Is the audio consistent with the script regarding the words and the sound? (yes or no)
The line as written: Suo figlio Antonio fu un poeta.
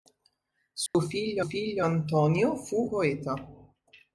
no